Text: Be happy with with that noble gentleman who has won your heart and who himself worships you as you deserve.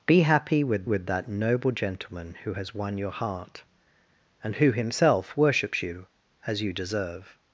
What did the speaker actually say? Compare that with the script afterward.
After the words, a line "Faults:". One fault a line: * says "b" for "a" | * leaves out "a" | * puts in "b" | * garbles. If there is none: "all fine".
Be happy with with that noble gentleman who has won your heart and who himself worships you as you deserve.
Faults:
all fine